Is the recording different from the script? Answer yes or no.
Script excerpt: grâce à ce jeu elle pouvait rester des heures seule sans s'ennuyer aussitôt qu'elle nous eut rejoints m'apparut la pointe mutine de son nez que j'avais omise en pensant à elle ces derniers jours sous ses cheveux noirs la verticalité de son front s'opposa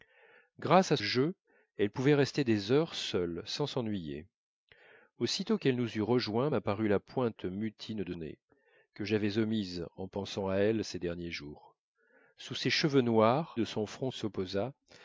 yes